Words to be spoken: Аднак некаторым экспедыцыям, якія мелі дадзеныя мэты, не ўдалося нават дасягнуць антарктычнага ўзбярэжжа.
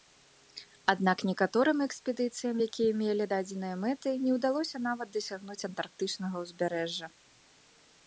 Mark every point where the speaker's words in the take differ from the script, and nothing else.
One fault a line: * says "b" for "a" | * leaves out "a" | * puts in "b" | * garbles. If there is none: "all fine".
all fine